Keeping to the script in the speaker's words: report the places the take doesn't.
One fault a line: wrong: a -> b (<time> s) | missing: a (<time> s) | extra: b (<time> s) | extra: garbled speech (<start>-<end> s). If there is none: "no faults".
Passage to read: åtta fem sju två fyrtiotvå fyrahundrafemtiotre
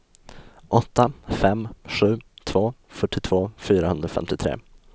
no faults